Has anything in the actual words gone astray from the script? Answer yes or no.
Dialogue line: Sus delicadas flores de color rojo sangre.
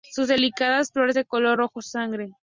no